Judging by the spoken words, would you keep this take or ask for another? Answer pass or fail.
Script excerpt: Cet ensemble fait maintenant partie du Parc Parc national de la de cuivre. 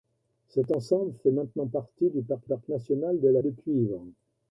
pass